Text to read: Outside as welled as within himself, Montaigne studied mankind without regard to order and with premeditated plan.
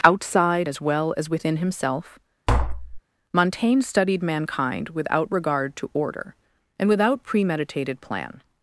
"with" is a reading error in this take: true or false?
true